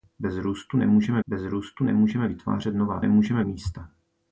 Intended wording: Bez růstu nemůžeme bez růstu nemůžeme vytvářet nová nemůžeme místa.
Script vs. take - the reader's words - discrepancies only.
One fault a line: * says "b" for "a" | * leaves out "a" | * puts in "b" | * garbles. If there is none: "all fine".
all fine